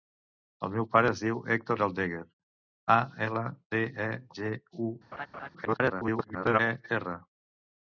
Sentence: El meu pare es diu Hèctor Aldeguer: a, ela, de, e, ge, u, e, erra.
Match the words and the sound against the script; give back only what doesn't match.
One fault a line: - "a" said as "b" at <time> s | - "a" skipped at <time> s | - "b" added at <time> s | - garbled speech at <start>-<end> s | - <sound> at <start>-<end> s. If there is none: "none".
- laugh at 5.1-5.5 s
- garbled speech at 5.6-6.6 s